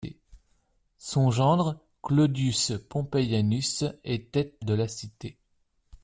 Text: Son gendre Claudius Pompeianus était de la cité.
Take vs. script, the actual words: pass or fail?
pass